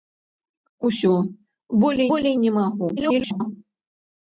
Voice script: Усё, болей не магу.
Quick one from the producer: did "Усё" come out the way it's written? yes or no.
yes